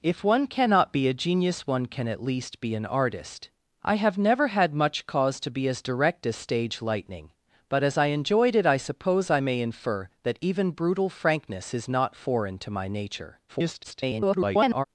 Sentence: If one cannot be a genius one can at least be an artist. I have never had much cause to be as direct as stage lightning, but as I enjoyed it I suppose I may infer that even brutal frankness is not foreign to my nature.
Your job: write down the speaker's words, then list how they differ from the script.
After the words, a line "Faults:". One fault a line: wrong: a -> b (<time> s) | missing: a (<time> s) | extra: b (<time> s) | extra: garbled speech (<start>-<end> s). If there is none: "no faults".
If one cannot be a genius one can at least be an artist. I have never had much cause to be as direct as stage lightning, but as I enjoyed it I suppose I may infer that even brutal frankness is not foreign to my nature. [garbled]
Faults:
extra: garbled speech (13.5-14.8 s)